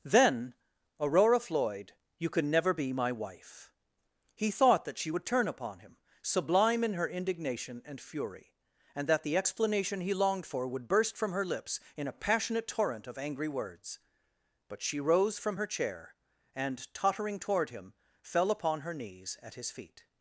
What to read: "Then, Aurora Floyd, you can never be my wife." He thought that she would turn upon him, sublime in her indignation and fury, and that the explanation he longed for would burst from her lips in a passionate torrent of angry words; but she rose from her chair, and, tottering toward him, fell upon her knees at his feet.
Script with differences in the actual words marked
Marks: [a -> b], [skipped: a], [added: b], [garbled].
"Then, Aurora Floyd, you can never be my wife." He thought that she would turn upon him, sublime in her indignation and fury, and that the explanation he longed for would burst from her lips in a passionate torrent of angry words; but she rose from her chair, and, tottering toward him, fell upon her knees at his feet.